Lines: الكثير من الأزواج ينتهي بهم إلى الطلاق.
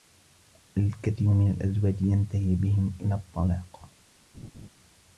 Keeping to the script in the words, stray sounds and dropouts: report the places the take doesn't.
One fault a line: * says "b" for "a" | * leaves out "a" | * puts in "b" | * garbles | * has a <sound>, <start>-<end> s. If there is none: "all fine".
* has a laugh, 4.3-4.7 s